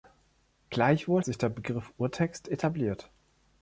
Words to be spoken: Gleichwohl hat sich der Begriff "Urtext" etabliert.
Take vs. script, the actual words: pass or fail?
fail